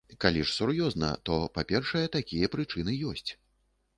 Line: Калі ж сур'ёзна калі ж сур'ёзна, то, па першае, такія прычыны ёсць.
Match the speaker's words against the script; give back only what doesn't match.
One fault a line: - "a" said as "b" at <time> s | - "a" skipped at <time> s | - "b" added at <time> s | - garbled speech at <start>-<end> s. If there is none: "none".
- "калі ж сур'ёзна" skipped at 1.1 s